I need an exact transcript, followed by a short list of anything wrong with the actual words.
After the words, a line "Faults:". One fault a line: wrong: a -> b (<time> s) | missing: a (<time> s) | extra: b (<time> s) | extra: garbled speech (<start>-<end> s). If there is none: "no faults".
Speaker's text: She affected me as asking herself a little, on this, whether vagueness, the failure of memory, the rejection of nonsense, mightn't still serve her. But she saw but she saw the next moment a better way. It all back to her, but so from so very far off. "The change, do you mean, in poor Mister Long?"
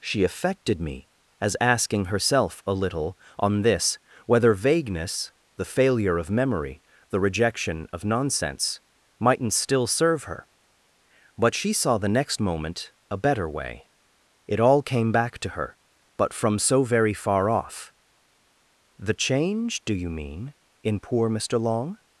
She affected me as asking herself a little, on this, whether vagueness, the failure of memory, the rejection of nonsense, mightn't still serve her. But she saw the next moment a better way. It all came back to her, but from so very far off. "The change, do you mean, in poor Mister Long?"
Faults:
missing: but she saw (12.0 s)
extra: came (14.8 s)
missing: so (16.3 s)